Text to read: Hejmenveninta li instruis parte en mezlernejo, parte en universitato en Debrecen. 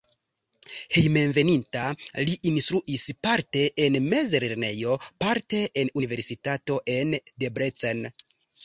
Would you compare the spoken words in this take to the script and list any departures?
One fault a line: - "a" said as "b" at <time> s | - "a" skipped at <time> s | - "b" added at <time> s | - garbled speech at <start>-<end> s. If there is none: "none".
none